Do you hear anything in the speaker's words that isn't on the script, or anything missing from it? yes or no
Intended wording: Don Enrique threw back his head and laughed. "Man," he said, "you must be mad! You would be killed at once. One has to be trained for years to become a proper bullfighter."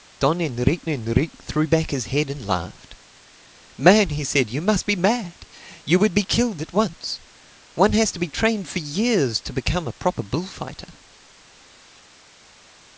yes